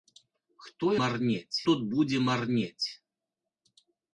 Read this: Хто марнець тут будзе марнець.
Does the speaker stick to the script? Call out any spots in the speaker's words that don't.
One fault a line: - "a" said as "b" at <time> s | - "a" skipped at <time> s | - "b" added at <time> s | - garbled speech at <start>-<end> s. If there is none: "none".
none